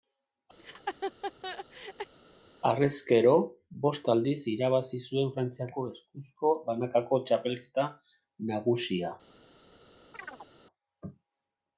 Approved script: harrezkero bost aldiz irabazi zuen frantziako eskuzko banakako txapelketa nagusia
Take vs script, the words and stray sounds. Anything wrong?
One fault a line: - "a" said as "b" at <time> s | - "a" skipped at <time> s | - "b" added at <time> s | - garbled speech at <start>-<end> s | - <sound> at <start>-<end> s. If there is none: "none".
- laugh at 0.6-2.1 s
- chirp at 10.1-10.5 s